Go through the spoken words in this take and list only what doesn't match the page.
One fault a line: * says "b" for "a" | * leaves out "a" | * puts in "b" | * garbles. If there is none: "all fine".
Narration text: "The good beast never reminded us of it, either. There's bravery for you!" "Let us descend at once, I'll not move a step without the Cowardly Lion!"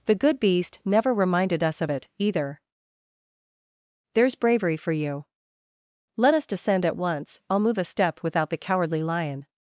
* leaves out "not"